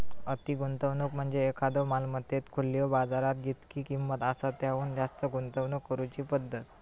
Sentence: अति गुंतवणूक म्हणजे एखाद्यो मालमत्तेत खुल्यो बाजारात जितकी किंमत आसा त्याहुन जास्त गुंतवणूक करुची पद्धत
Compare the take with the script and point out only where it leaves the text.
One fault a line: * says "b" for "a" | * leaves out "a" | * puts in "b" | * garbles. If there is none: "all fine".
all fine